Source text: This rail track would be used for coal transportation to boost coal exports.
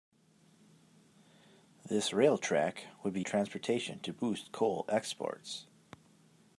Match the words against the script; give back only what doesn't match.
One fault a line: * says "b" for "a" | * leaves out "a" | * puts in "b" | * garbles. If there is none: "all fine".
* leaves out "used for coal"